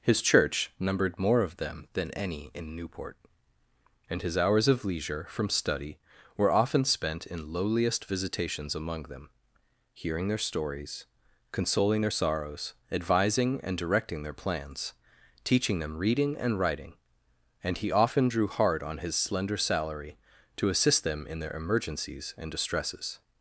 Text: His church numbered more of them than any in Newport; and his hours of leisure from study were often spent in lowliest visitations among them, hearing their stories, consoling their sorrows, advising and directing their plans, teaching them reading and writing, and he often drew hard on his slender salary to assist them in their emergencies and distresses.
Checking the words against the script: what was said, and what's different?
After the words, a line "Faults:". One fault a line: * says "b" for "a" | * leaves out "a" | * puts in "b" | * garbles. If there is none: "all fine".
His church numbered more of them than any in Newport; and his hours of leisure from study were often spent in lowliest visitations among them, hearing their stories, consoling their sorrows, advising and directing their plans, teaching them reading and writing, and he often drew hard on his slender salary to assist them in their emergencies and distresses.
Faults:
all fine